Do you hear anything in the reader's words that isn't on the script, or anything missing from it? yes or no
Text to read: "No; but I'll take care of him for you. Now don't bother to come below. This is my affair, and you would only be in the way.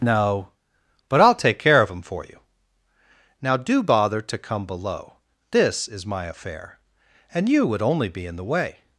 yes